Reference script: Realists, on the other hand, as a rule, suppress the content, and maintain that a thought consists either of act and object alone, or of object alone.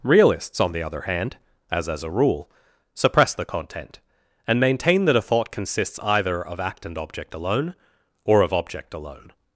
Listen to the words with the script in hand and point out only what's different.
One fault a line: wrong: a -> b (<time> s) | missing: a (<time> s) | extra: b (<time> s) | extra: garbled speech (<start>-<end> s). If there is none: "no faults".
extra: as (1.9 s)